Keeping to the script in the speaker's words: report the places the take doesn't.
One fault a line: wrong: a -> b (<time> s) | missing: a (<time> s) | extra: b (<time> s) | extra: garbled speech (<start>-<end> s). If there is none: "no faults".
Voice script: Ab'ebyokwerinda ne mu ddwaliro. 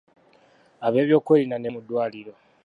no faults